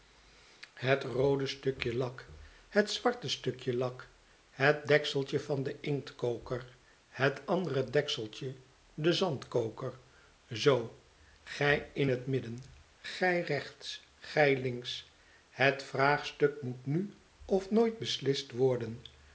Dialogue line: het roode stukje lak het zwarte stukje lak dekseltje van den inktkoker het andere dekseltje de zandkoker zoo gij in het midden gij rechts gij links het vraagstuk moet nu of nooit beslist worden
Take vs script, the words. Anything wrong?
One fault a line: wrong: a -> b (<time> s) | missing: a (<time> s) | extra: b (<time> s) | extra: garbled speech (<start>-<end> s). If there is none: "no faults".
extra: het (4.5 s)